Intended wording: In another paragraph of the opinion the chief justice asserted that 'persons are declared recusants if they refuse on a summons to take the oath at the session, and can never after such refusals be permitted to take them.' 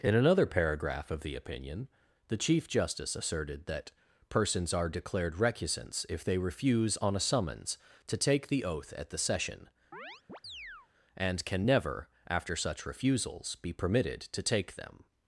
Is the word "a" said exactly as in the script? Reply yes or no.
yes